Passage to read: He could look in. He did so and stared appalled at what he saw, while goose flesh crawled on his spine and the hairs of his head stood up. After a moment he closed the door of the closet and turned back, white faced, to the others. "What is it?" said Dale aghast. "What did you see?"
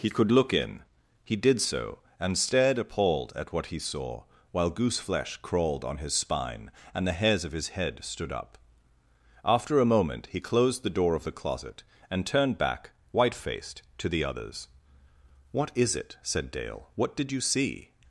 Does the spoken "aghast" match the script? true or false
false